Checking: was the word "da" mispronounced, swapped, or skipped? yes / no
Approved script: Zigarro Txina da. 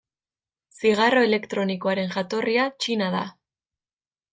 no